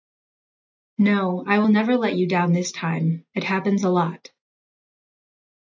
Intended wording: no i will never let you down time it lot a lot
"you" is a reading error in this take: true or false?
false